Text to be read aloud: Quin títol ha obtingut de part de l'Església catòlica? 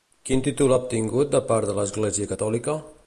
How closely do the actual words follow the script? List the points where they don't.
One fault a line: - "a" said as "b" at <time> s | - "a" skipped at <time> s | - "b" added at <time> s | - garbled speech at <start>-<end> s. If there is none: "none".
none